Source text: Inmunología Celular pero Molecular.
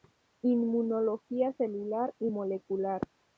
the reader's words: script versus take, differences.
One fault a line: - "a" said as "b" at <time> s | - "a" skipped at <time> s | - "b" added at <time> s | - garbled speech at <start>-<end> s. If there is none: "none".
- "pero" said as "y" at 2.2 s